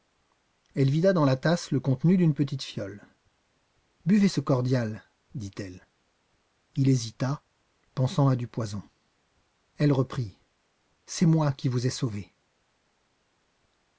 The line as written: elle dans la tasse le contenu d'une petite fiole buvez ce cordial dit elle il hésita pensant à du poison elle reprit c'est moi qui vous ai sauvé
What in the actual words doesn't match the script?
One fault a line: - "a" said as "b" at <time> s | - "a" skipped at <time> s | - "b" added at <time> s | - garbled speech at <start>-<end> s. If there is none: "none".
- "vida" added at 0.9 s